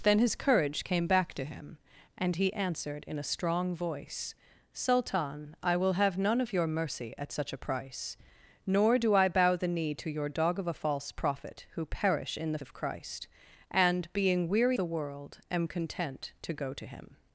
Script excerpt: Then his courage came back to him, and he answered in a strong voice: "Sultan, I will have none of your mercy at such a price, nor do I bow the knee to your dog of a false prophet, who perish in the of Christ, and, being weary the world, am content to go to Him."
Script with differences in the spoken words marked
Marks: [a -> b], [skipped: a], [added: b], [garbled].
Then his courage came back to him, and he answered in a strong voice: "Sultan, I will have none of your mercy at such a price, nor do I bow the knee to your dog of a false prophet, who perish in the of Christ, and, being weary the world, am content to go to Him."